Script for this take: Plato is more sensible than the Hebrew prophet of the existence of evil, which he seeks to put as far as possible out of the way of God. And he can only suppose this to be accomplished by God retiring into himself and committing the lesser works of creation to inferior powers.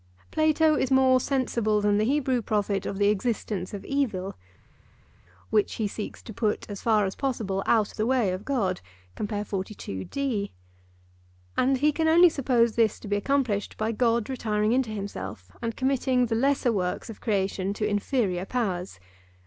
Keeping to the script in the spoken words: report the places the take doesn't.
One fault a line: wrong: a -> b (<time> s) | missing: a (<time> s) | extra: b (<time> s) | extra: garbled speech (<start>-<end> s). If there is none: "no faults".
missing: of (7.9 s)